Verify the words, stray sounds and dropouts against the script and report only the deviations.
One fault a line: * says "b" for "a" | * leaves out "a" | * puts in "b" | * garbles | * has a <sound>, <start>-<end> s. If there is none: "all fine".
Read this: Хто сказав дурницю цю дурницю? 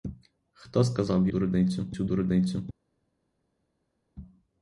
all fine